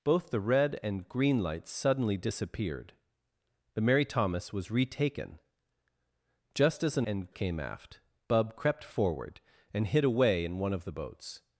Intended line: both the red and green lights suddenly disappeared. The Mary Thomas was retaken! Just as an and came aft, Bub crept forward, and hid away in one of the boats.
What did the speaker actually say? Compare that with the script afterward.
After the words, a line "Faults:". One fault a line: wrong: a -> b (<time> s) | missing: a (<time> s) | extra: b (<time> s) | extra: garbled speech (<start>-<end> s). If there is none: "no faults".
both the red and green lights suddenly disappeared. The Mary Thomas was retaken! Just as an and came aft, Bub crept forward, and hid away in one of the boats.
Faults:
no faults